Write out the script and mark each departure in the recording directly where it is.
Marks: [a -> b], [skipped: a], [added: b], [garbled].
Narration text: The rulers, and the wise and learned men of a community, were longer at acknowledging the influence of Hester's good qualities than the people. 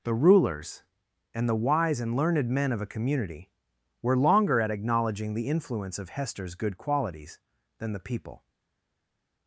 The rulers, and the wise and learned men of a community, were longer at acknowledging the influence of Hester's good qualities than the people.